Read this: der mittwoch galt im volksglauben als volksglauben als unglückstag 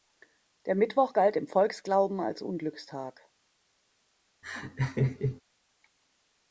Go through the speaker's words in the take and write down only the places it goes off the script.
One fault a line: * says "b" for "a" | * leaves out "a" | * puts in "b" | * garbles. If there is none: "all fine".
* leaves out "volksglauben als"